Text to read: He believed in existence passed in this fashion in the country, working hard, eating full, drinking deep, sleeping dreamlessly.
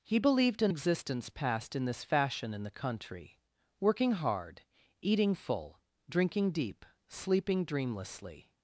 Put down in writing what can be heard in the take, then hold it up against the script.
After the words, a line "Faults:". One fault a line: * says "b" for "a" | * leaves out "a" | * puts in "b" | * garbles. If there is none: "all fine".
He believed in existence passed in this fashion in the country, working hard, eating full, drinking deep, sleeping dreamlessly.
Faults:
all fine